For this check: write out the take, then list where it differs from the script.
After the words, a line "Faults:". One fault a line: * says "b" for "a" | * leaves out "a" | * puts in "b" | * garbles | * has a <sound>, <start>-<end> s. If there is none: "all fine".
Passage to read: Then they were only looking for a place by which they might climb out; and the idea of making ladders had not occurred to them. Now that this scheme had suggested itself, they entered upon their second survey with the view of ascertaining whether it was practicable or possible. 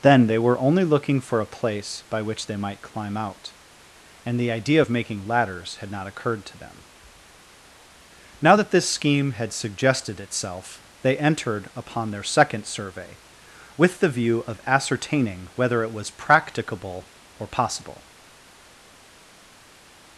Then they were only looking for a place by which they might climb out; and the idea of making ladders had not occurred to them. Now that this scheme had suggested itself, they entered upon their second survey with the view of ascertaining whether it was practicable or possible.
Faults:
all fine